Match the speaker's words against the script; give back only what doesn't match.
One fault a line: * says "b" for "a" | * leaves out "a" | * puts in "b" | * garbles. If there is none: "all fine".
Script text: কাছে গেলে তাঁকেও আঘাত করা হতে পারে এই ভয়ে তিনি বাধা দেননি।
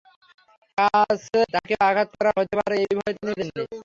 * leaves out "গেলে"
* leaves out "বাধা"